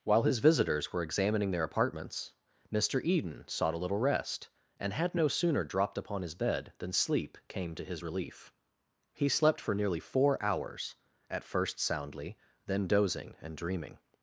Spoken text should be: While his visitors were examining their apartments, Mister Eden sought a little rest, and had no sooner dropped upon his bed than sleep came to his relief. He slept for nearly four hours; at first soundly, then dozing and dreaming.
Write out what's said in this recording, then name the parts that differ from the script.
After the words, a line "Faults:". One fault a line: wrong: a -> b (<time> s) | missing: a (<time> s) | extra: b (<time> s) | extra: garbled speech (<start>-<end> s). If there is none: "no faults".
While his visitors were examining their apartments, Mister Eden sought a little rest, and had no sooner dropped upon his bed than sleep came to his relief. He slept for nearly four hours; at first soundly, then dozing and dreaming.
Faults:
no faults